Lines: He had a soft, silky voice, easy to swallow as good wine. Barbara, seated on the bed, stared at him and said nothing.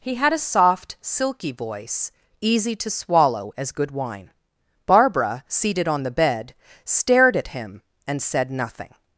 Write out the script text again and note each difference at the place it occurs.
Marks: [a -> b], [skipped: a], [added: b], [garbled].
He had a soft, silky voice, easy to swallow as good wine. Barbara, seated on the bed, stared at him and said nothing.